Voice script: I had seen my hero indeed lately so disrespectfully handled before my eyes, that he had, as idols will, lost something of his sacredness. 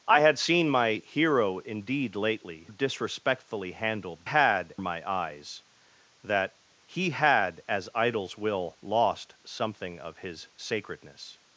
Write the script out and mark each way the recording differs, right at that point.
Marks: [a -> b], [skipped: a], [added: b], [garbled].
I had seen my hero indeed lately [skipped: so] disrespectfully handled [before -> had] my eyes, that he had, as idols will, lost something of his sacredness.